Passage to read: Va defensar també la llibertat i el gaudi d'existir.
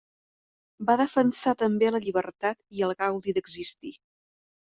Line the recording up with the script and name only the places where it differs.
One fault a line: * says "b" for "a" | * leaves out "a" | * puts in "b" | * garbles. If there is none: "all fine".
all fine